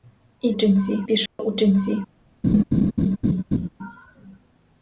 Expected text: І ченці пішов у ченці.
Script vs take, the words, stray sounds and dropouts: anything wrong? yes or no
yes